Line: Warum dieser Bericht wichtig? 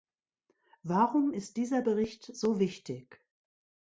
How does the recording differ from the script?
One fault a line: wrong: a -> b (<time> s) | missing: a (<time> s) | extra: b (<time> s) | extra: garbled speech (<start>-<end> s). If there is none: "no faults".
extra: ist (1.3 s)
extra: so (2.2 s)